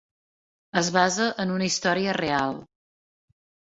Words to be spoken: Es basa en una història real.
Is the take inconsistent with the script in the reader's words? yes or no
no